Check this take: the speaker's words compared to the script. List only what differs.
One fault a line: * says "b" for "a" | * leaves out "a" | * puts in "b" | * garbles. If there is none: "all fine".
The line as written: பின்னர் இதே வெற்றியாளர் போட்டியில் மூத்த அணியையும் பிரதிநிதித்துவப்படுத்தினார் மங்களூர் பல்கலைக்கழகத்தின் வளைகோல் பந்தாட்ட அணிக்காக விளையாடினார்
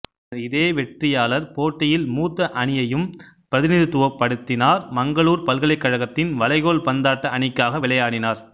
all fine